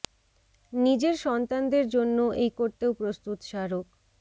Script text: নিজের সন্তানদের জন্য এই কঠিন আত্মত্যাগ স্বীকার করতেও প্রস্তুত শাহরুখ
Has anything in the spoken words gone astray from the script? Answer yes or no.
yes